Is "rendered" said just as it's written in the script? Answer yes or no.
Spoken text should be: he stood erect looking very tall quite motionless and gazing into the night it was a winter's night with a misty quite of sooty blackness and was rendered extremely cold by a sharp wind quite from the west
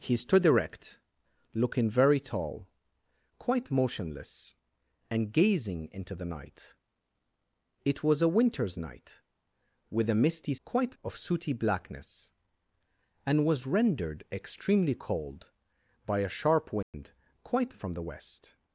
yes